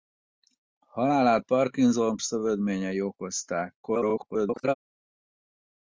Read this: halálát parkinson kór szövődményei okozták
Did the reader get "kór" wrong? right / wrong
wrong